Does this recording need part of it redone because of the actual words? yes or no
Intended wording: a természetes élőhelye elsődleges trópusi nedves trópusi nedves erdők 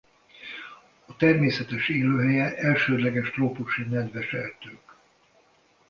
yes